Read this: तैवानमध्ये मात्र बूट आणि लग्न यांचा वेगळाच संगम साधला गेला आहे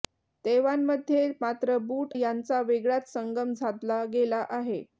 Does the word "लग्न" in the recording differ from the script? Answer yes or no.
yes